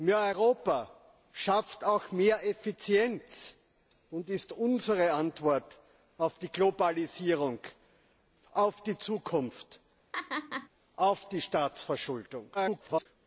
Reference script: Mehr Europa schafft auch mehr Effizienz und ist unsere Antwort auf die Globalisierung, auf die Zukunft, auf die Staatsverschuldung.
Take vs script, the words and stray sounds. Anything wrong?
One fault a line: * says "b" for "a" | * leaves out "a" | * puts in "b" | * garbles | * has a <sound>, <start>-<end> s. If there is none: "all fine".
* has a laugh, 10.1-10.7 s
* garbles